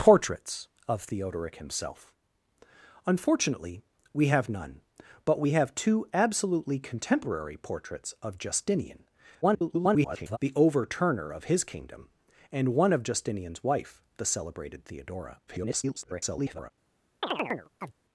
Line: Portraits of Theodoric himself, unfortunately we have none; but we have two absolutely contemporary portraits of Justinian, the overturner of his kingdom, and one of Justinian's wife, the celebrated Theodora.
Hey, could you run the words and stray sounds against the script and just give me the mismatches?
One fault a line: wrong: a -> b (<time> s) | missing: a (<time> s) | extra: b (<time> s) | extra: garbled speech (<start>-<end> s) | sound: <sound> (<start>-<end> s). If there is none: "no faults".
extra: garbled speech (9.4-10.4 s)
extra: garbled speech (15.5-16.7 s)
sound: chirp (17.2-18.0 s)